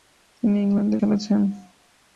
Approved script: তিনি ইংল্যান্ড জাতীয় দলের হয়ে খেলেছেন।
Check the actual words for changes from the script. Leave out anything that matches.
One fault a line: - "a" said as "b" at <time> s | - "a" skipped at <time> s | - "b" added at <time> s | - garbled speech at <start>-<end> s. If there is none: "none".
- "জাতীয় দলের হয়ে" skipped at 0.9 s